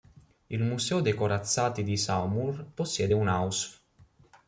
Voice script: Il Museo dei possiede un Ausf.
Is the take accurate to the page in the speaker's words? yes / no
no